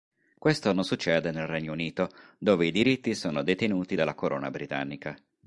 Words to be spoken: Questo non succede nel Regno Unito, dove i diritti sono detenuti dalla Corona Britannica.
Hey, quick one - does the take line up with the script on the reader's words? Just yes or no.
yes